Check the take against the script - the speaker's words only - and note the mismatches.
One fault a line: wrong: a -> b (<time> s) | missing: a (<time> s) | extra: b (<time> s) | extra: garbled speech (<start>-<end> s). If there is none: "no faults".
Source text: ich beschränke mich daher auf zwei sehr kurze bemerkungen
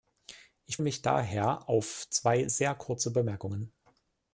missing: beschränke (0.8 s)